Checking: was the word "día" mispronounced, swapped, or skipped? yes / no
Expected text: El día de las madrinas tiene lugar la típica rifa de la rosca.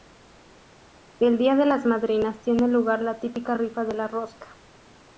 no